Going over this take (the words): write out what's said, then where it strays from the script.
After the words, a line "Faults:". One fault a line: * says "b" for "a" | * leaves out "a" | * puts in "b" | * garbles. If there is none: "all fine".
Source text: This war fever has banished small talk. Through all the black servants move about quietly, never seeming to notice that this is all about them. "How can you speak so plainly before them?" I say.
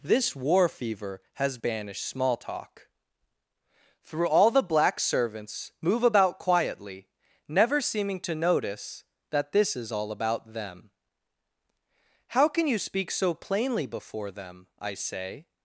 This war fever has banished small talk. Through all the black servants move about quietly, never seeming to notice that this is all about them. "How can you speak so plainly before them?" I say.
Faults:
all fine